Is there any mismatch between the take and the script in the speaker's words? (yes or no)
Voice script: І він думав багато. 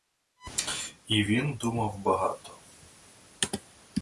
no